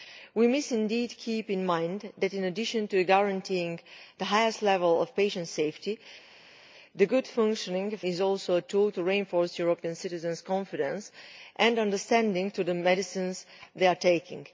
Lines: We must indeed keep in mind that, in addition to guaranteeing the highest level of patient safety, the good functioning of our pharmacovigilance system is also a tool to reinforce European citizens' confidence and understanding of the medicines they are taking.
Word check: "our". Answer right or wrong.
wrong